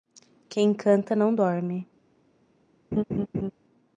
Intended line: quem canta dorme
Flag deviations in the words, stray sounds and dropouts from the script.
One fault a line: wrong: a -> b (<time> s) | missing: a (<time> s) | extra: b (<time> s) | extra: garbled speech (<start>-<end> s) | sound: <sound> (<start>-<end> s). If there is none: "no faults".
extra: não (1.1 s)
sound: laugh (2.9-3.5 s)